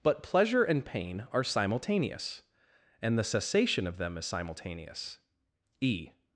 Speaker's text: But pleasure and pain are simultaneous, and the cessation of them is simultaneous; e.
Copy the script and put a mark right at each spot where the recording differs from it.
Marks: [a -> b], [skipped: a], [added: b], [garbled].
But pleasure and pain are simultaneous, and the cessation of them is simultaneous; e.